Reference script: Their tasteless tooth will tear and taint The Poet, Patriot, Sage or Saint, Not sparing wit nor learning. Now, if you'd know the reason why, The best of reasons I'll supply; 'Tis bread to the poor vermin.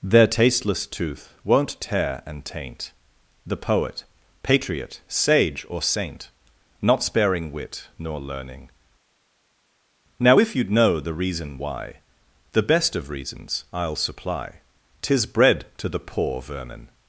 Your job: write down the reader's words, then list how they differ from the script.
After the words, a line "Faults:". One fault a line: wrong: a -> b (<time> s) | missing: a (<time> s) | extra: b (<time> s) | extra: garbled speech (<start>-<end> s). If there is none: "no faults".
Their tasteless tooth won't tear and taint The Poet, Patriot, Sage or Saint, Not sparing wit nor learning. Now, if you'd know the reason why, The best of reasons I'll supply; 'Tis bread to the poor vermin.
Faults:
wrong: will -> won't (1.4 s)